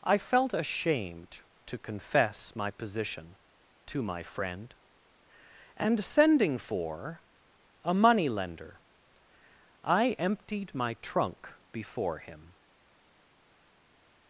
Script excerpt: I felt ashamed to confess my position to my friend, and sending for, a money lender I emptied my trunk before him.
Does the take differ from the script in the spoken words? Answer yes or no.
no